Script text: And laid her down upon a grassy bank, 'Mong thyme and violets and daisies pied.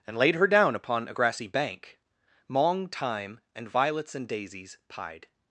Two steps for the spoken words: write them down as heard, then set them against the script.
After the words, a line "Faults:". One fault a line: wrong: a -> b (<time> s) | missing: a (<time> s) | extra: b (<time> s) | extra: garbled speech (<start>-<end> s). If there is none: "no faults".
And laid her down upon a grassy bank, 'Mong thyme and violets and daisies pied.
Faults:
no faults